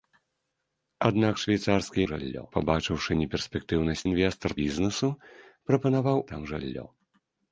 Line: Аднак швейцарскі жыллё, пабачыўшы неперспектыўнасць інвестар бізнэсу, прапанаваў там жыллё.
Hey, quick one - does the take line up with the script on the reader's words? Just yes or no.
yes